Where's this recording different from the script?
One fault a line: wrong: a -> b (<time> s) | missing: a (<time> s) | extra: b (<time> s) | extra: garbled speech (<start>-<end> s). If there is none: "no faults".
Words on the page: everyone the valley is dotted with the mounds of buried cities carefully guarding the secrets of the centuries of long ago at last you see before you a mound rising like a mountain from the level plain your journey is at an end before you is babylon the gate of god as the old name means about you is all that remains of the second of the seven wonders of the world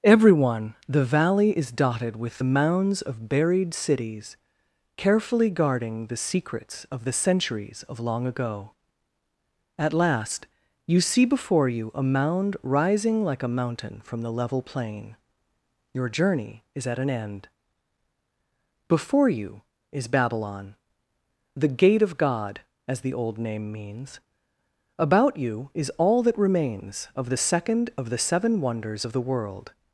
no faults